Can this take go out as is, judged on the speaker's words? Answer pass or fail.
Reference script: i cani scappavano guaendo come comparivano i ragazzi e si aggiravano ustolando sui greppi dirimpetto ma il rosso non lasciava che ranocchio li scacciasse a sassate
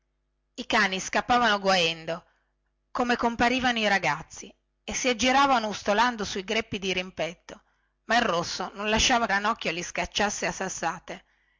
fail